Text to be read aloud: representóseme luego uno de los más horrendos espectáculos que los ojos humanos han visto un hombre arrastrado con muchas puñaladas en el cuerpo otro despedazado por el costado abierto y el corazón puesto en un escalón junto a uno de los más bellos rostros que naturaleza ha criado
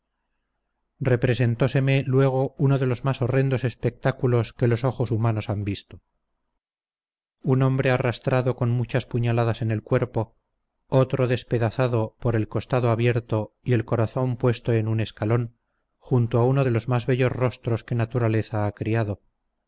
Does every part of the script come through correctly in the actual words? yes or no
yes